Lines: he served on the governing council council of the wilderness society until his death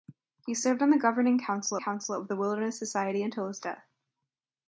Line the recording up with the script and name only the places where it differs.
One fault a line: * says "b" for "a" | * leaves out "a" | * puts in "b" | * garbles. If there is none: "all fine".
all fine